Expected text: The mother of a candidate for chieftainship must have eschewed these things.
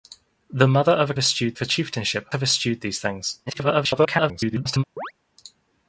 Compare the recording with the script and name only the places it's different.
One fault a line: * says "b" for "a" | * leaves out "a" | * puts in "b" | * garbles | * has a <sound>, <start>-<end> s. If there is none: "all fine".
* says "eschewed" for "candidate"
* leaves out "must"
* garbles
* has a chirp, 5.0-5.1 s